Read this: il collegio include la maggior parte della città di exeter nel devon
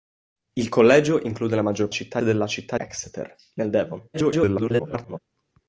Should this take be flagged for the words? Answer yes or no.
yes